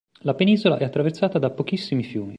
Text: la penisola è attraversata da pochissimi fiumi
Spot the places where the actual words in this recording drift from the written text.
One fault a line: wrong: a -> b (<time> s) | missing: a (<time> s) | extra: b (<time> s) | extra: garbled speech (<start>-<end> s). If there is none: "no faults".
no faults